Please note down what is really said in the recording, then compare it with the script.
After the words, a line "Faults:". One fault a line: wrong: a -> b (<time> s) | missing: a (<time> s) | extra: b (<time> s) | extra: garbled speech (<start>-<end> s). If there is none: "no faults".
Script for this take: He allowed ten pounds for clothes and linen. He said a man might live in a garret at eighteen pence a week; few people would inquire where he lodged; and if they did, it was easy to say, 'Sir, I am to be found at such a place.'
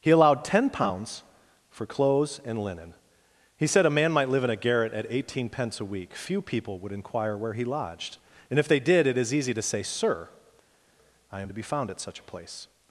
He allowed ten pounds for clothes and linen. He said a man might live in a garret at eighteen pence a week; few people would inquire where he lodged; and if they did, it is easy to say, 'Sir, I am to be found at such a place.'
Faults:
wrong: was -> is (9.2 s)